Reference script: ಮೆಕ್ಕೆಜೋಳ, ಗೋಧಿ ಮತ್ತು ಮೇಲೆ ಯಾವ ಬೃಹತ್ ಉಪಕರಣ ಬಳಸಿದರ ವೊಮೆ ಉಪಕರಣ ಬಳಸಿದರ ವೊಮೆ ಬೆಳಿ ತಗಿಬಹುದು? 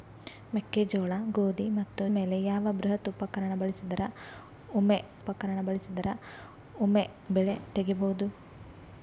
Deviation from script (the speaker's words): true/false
false